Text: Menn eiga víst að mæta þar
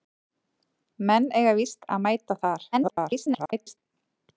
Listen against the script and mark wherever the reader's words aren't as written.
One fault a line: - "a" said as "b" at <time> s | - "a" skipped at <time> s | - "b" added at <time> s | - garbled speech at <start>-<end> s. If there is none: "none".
- garbled speech at 2.7-3.8 s